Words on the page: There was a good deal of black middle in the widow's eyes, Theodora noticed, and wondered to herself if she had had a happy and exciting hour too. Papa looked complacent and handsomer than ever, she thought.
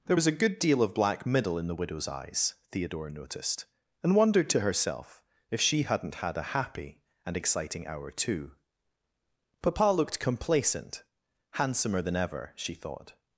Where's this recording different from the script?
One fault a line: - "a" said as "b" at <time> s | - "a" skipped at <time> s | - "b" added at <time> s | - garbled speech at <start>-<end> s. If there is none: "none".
- "had" said as "hadn't" at 5.8 s
- "and" skipped at 11.0 s